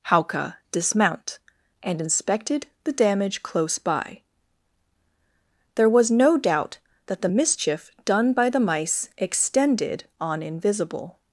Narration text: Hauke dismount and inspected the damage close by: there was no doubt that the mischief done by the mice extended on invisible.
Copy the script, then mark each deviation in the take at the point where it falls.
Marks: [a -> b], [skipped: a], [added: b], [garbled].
Hauke dismount and inspected the damage close by: there was no doubt that the mischief done by the mice extended on invisible.